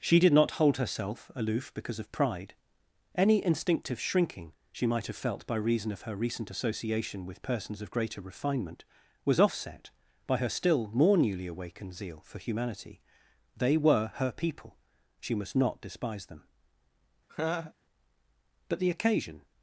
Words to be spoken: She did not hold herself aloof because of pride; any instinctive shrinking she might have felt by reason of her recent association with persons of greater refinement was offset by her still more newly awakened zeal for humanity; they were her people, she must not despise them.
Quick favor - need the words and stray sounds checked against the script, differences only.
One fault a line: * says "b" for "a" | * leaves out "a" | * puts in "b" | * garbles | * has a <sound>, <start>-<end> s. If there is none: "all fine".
* has a laugh, 17.3-17.7 s
* puts in "But the occasion"